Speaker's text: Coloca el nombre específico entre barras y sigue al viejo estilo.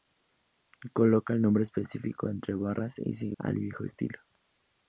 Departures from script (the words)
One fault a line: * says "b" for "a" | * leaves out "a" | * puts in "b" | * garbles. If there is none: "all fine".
all fine